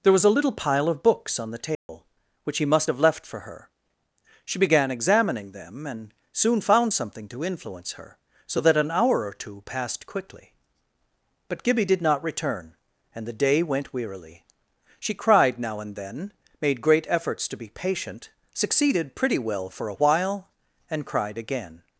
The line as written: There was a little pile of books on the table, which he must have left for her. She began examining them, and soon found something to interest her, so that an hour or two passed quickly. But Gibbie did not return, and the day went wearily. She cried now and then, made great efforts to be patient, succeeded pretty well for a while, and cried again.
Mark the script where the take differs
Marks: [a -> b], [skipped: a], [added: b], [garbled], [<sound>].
There was a little pile of books on the table, [dropout] which he must have left for her. She began examining them, and soon found something to [interest -> influence] her, so that an hour or two passed quickly. But Gibbie did not return, and the day went wearily. She cried now and then, made great efforts to be patient, succeeded pretty well for a while, and cried again.